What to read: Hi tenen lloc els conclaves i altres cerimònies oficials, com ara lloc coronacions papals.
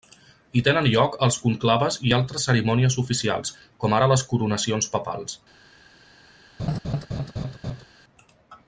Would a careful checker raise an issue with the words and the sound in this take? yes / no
yes